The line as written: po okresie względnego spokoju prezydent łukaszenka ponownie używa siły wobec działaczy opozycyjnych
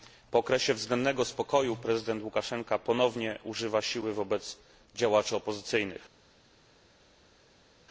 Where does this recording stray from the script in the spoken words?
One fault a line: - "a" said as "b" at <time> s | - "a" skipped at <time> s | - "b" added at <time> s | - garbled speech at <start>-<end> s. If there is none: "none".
none